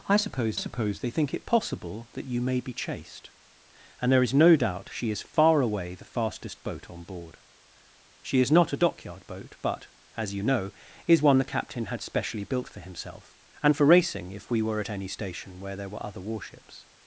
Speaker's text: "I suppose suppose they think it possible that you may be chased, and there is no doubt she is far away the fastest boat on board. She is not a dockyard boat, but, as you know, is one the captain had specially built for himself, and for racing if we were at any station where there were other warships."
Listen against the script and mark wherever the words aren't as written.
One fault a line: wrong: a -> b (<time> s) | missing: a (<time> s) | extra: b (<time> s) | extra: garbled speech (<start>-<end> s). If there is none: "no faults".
no faults